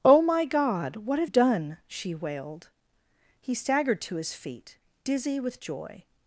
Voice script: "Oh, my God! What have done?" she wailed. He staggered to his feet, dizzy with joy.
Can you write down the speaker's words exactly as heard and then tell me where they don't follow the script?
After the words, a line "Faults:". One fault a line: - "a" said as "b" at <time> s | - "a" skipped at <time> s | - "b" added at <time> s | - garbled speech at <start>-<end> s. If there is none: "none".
"Oh, my God! What have done?" she wailed. He staggered to his feet, dizzy with joy.
Faults:
none